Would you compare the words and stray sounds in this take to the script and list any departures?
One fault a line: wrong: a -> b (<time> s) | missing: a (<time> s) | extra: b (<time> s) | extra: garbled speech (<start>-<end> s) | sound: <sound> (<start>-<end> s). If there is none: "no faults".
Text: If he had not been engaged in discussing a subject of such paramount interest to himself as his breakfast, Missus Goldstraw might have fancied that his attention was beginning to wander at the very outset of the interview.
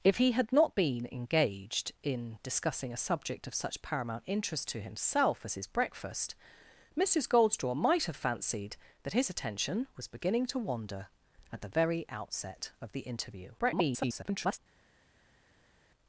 extra: garbled speech (13.6-14.6 s)